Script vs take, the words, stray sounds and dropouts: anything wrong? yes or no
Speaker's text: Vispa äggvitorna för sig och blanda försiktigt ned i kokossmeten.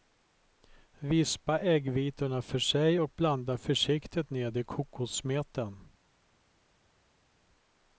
no